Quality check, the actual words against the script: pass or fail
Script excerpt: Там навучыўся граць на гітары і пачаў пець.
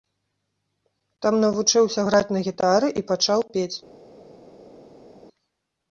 pass